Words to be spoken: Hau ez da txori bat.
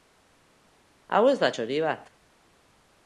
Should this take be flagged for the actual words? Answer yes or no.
no